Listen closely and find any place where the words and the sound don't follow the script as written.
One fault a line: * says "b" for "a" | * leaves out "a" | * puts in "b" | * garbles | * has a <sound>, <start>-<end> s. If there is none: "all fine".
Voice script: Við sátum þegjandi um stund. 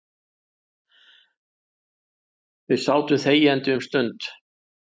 all fine